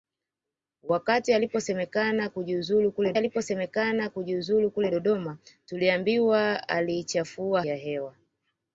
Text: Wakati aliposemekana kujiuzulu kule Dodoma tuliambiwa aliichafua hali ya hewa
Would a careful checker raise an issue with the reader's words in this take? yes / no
yes